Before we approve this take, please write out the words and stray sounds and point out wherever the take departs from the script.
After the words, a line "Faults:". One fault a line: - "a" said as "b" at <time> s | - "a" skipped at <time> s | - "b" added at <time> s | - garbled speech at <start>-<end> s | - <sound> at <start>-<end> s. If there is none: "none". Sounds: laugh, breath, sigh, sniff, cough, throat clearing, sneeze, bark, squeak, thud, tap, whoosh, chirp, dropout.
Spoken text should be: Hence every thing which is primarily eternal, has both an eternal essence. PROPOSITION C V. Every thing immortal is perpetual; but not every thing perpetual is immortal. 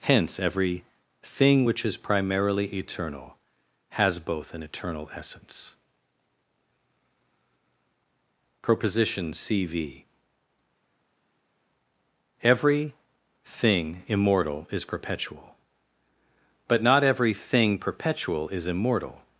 Hence every thing which is primarily eternal, has both an eternal essence. PROPOSITION C V. Every thing immortal is perpetual; but not every thing perpetual is immortal.
Faults:
none